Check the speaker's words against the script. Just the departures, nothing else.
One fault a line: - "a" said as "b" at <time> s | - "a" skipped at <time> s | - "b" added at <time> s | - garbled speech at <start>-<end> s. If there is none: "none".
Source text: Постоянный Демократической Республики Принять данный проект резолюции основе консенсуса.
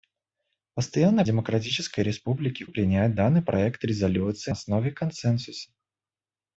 none